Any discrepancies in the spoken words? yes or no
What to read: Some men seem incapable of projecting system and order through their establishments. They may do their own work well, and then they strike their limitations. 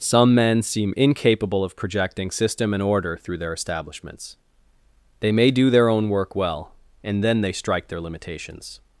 no